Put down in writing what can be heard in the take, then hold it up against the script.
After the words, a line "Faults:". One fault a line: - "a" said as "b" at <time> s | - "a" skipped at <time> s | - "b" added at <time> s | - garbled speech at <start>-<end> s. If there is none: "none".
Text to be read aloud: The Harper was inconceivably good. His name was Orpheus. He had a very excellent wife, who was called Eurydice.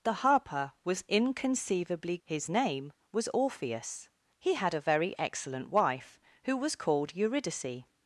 The Harper was inconceivably. His name was Orpheus. He had a very excellent wife, who was called Eurydice.
Faults:
- "good" skipped at 2.2 s